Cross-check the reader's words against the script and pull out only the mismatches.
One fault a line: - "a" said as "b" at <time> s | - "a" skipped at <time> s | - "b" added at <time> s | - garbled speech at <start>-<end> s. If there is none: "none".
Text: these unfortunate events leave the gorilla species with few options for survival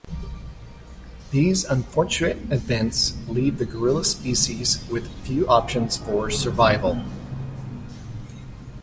none